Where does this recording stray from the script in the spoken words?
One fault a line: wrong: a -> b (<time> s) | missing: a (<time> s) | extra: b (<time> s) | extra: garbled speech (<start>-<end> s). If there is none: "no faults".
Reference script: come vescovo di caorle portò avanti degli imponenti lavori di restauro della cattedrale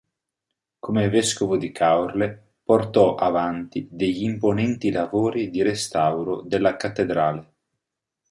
no faults